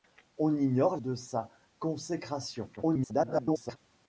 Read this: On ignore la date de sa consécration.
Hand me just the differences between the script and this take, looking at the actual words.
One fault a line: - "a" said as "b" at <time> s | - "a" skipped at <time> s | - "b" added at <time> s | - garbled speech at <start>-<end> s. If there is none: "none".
- "la date" skipped at 1.0 s
- garbled speech at 2.8-3.8 s